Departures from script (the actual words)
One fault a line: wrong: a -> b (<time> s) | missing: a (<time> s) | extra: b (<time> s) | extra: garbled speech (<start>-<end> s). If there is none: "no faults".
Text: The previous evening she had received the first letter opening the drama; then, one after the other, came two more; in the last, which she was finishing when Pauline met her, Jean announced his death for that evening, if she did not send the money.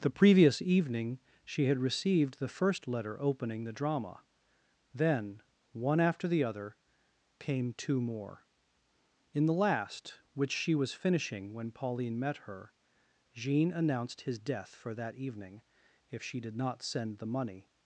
no faults